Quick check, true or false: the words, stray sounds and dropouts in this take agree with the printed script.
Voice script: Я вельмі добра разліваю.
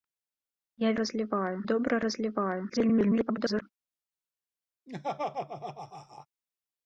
false